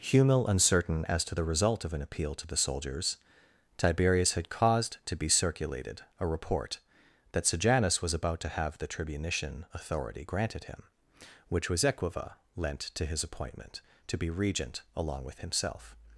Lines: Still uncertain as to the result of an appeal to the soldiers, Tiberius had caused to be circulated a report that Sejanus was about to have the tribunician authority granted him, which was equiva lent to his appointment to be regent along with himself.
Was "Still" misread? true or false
true